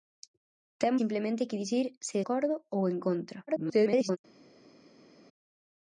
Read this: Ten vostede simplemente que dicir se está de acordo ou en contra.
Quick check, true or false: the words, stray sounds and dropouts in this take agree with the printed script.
false